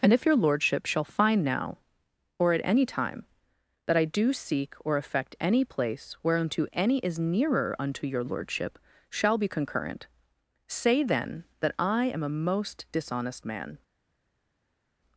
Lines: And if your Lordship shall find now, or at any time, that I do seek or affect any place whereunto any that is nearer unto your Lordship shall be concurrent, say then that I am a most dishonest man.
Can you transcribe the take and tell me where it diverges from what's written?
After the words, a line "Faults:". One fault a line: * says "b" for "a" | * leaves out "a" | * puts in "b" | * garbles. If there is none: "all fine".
And if your Lordship shall find now, or at any time, that I do seek or affect any place whereunto any is nearer unto your Lordship shall be concurrent, say then that I am a most dishonest man.
Faults:
* leaves out "that"